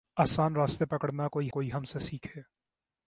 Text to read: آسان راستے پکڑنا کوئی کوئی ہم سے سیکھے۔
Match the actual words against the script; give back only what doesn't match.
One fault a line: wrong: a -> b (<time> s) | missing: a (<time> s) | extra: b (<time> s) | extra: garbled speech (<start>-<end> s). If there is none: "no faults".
no faults